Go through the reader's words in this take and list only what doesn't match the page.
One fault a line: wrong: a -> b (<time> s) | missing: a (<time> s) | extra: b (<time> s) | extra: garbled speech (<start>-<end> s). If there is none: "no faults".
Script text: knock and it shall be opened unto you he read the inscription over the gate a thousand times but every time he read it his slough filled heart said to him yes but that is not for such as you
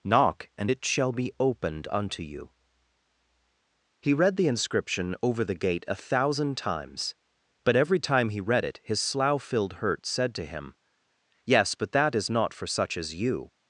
wrong: heart -> hurt (9.7 s)